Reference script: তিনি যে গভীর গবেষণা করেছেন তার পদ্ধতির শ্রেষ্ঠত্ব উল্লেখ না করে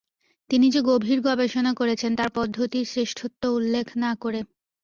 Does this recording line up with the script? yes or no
yes